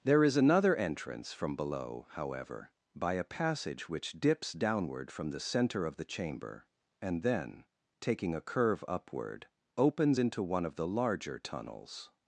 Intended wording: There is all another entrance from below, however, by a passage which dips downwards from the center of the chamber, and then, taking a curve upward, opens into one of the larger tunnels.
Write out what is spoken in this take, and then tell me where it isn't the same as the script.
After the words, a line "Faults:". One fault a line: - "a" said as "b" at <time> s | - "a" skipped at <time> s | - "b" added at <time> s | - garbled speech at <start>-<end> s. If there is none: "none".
There is another entrance from below, however, by a passage which dips downward from the center of the chamber, and then, taking a curve upward, opens into one of the larger tunnels.
Faults:
- "all" skipped at 0.3 s
- "downwards" said as "downward" at 4.5 s